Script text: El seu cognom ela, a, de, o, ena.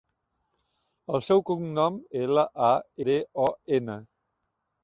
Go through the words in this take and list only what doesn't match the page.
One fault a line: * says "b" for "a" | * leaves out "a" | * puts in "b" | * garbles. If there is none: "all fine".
all fine